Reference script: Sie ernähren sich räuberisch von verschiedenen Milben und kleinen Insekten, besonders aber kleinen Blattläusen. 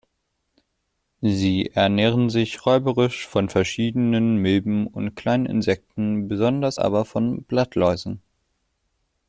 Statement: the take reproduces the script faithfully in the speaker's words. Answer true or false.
false